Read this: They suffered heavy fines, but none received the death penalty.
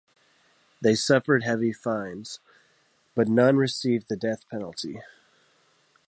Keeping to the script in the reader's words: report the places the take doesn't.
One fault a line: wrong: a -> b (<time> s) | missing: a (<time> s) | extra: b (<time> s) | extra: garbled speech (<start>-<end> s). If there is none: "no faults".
no faults